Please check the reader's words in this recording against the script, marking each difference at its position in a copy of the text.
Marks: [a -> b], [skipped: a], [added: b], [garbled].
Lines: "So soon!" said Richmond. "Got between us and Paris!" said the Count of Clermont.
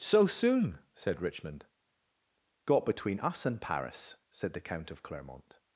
"So soon!" said Richmond. "Got between us and Paris!" said the Count of Clermont.